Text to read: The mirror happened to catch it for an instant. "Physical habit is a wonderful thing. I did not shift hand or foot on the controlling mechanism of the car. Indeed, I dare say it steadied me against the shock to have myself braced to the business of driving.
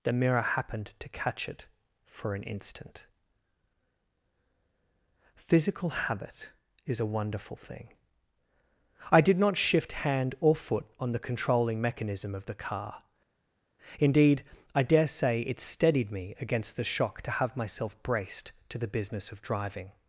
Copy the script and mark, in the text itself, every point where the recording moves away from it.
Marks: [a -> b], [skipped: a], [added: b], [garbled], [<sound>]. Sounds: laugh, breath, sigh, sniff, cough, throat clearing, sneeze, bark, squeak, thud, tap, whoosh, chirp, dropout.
The mirror happened to catch it for an instant. "Physical habit is a wonderful thing. I did not shift hand or foot on the controlling mechanism of the car. Indeed, I dare say it steadied me against the shock to have myself braced to the business of driving.